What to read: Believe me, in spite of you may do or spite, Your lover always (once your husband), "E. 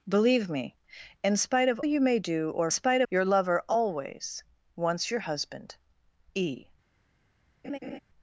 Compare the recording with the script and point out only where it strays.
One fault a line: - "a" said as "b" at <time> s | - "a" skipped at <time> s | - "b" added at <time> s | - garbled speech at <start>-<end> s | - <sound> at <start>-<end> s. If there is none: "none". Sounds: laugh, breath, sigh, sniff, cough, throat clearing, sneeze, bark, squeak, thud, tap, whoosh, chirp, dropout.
- laugh at 7.6-8.0 s